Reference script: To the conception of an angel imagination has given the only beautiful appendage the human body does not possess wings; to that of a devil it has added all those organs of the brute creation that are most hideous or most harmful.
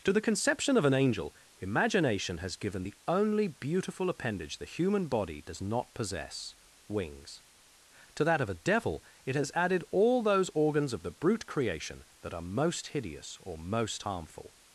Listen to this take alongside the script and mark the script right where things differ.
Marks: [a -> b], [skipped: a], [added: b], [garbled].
To the conception of an angel imagination has given the only beautiful appendage the human body does not possess wings; to that of a devil it has added all those organs of the brute creation that are most hideous or most harmful.